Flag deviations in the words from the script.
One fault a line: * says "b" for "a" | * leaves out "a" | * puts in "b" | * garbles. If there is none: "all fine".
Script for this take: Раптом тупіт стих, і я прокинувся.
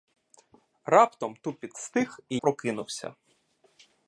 * leaves out "я"